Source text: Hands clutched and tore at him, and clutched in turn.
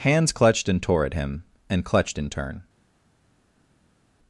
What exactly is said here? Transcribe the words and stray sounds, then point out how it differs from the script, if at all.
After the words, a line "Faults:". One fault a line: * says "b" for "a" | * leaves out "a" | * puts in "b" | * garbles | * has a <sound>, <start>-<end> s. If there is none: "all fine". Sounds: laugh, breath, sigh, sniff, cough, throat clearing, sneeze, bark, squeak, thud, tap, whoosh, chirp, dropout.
Hands clutched and tore at him, and clutched in turn.
Faults:
all fine